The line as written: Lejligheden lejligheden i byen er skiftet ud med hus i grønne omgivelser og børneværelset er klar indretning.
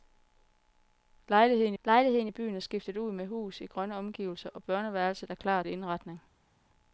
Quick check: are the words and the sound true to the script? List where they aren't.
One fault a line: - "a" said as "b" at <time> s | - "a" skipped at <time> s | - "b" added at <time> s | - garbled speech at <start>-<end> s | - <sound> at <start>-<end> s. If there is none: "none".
none